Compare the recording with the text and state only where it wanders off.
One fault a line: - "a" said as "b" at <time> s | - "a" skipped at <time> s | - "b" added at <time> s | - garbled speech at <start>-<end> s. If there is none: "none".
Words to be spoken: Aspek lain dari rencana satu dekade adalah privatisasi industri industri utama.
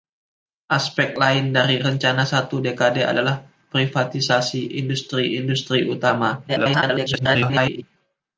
- garbled speech at 6.5-7.8 s